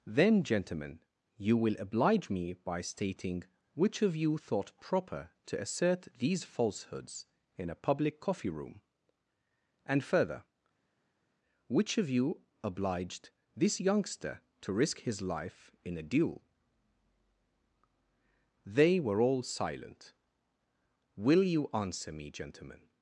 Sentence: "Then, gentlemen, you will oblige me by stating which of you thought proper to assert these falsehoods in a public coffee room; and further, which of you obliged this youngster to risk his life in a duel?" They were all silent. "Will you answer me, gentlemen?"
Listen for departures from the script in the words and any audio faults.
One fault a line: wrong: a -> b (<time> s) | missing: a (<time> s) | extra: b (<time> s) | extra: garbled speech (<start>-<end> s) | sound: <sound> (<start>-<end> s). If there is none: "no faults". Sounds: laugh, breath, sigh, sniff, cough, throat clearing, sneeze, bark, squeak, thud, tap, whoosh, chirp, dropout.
no faults